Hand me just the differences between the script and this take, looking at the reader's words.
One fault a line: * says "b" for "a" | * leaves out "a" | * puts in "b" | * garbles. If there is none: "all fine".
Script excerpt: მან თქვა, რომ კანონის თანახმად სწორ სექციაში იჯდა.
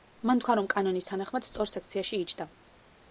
all fine